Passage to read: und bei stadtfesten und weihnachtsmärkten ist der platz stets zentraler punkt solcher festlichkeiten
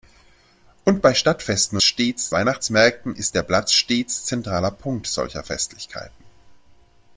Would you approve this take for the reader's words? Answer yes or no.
no